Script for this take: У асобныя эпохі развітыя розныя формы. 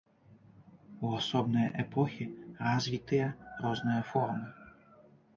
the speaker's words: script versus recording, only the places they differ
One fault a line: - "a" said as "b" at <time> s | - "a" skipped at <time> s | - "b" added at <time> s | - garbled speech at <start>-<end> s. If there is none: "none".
none